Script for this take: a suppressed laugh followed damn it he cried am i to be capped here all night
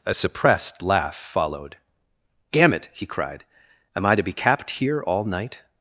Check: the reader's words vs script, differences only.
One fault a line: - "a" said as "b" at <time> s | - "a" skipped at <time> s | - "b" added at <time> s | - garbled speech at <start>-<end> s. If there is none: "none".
none